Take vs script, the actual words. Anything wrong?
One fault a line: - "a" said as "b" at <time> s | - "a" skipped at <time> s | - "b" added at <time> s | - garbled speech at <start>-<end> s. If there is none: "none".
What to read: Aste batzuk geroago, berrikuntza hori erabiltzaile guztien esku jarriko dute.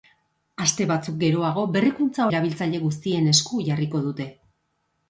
- "hori" skipped at 2.2 s